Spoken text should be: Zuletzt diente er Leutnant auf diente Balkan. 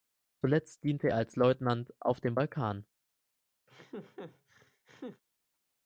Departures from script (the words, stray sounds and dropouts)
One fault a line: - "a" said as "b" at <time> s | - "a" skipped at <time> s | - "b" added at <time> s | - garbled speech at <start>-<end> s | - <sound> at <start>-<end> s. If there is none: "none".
- "als" added at 1.2 s
- "diente" said as "dem" at 2.2 s
- laugh at 3.7-5.2 s